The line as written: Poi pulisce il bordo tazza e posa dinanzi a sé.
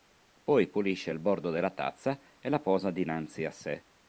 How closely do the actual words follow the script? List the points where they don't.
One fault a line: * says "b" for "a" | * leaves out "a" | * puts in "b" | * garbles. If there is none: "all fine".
* puts in "della"
* puts in "la"